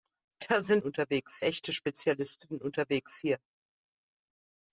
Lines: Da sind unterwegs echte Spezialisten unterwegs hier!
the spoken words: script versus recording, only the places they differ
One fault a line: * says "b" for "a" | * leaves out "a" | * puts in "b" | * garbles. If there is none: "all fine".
all fine